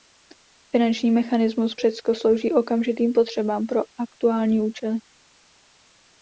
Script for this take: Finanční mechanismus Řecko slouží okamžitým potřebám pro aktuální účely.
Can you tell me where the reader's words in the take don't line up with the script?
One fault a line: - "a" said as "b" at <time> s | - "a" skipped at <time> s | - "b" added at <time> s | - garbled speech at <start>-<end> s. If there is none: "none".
none